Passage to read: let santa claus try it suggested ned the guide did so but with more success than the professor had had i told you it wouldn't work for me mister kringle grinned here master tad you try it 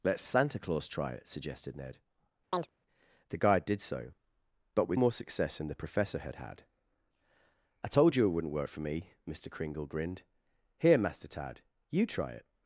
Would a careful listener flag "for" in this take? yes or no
no